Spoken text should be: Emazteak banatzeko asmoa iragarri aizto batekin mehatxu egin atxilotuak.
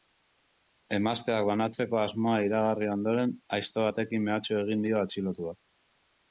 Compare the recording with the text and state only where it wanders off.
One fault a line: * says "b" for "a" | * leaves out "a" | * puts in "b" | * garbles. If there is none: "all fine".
* puts in "ondoren"
* puts in "dio"